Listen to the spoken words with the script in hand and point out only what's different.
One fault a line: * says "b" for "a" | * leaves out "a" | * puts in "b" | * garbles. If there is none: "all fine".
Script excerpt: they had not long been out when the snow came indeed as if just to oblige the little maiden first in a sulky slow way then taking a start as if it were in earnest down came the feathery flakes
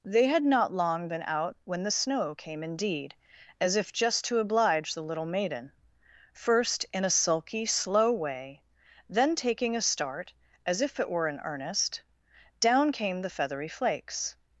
all fine